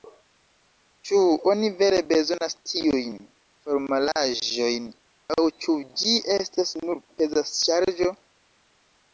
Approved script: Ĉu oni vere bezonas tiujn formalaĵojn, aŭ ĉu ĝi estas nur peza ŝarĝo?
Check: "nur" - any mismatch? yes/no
no